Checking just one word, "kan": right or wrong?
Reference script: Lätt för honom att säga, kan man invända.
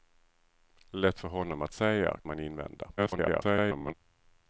wrong